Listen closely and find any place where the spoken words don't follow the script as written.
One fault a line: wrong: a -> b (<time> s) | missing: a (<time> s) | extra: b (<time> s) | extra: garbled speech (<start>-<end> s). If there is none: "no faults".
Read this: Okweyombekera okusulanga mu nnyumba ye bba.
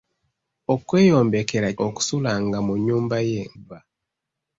no faults